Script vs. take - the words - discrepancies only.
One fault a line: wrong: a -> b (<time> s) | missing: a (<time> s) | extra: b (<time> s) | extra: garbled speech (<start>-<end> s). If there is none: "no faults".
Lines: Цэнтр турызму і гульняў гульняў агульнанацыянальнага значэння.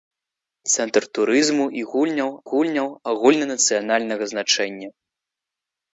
no faults